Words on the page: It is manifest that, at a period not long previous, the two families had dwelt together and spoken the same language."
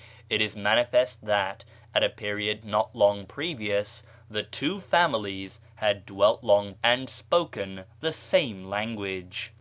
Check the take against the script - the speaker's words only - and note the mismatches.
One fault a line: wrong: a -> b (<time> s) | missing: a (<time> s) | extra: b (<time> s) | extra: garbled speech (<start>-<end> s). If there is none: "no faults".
wrong: together -> long (6.4 s)